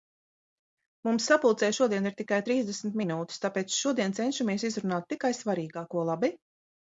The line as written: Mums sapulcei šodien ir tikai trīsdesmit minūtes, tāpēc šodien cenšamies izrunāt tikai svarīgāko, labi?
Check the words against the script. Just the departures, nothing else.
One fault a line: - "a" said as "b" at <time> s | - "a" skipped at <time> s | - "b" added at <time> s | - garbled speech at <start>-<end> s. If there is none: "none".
none